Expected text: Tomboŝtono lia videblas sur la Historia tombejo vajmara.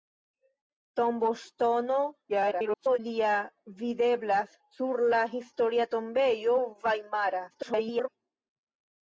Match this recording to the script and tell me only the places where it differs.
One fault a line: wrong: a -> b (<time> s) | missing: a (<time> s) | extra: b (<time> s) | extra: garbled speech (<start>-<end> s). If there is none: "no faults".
extra: garbled speech (2.3-3.0 s)
extra: garbled speech (7.5-8.1 s)